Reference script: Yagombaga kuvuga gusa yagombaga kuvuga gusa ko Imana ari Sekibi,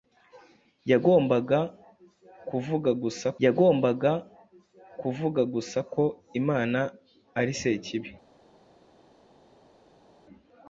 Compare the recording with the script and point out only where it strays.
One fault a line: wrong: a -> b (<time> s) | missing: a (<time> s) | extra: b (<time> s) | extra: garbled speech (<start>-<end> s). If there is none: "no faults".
no faults